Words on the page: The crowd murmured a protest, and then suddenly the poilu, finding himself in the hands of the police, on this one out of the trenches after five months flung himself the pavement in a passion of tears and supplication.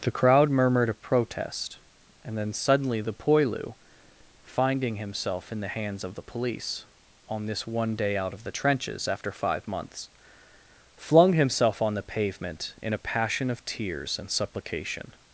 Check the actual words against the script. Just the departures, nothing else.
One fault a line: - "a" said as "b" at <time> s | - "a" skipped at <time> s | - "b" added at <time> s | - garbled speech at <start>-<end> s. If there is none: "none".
- "day" added at 8.0 s
- "on" added at 11.8 s